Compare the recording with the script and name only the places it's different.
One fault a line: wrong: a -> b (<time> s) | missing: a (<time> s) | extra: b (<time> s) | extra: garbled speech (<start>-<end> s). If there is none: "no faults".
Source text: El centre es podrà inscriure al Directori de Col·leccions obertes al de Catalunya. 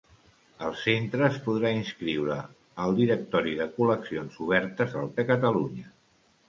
no faults